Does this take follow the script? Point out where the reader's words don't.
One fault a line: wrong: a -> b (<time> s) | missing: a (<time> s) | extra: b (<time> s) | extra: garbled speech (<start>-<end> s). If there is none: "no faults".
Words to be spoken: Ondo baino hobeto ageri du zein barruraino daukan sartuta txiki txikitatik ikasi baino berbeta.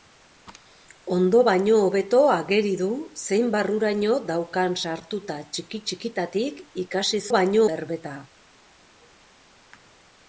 no faults